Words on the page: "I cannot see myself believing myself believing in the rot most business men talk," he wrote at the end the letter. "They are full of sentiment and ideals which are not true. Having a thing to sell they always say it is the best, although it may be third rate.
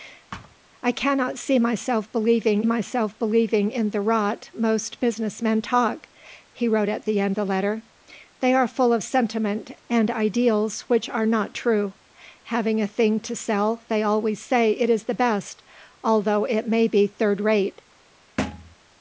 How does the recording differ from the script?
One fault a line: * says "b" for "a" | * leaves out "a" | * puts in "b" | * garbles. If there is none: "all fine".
all fine